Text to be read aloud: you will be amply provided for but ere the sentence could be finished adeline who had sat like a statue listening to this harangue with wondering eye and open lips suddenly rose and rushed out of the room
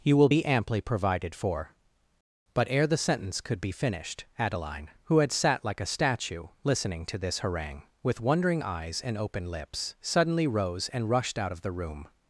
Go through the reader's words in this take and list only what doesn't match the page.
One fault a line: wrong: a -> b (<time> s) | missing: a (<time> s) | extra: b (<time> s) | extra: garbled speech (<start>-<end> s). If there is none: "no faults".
wrong: eye -> eyes (8.6 s)